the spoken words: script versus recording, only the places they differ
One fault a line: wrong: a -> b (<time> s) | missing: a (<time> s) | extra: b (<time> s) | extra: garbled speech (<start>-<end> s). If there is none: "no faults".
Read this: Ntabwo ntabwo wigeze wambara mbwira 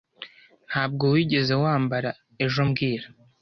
missing: ntabwo (1.0 s)
extra: ejo (2.4 s)